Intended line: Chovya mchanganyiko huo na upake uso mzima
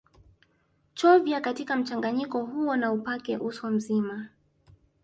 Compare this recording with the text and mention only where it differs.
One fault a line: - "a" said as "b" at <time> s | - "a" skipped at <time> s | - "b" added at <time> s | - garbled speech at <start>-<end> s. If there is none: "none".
- "katika" added at 1.4 s